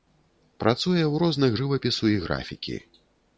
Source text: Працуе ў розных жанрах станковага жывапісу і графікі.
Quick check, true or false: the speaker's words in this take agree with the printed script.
false